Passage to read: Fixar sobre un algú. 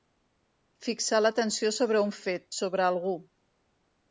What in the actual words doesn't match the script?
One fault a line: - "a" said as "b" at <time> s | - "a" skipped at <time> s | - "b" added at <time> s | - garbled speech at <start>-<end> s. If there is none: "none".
- "l'atenció" added at 1.2 s
- "fet sobre" added at 2.2 s